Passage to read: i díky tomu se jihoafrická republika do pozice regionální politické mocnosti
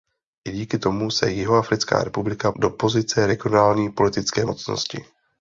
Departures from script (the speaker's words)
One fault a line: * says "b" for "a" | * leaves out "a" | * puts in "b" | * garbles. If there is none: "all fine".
all fine